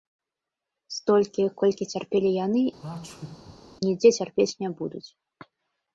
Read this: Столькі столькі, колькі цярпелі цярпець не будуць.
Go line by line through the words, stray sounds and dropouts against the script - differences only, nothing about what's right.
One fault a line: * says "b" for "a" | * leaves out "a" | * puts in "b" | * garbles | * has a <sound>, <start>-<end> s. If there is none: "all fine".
* leaves out "столькі"
* puts in "яны нідзе"
* has a sneeze, 2.8-3.6 s